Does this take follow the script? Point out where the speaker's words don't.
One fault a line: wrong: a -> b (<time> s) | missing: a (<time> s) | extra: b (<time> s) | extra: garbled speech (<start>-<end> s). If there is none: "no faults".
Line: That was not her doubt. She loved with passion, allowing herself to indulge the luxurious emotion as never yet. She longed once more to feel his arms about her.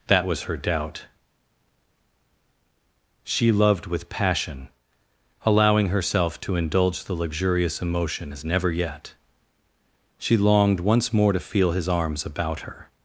missing: not (0.4 s)